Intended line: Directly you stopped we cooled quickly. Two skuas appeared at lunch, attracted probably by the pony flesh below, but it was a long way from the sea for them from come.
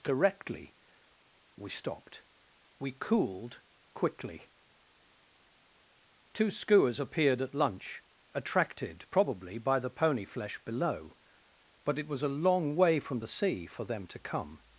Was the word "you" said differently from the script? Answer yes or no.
yes